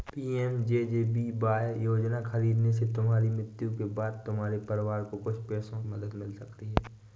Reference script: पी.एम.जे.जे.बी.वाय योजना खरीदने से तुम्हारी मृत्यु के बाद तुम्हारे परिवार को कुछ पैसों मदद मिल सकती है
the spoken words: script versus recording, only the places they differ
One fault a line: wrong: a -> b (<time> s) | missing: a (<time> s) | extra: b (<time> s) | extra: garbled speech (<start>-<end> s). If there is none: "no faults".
no faults